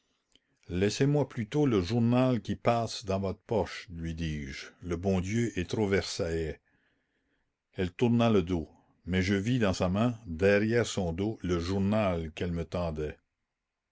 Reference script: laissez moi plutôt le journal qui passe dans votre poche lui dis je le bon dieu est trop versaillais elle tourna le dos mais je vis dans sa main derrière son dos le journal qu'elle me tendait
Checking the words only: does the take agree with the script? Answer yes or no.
yes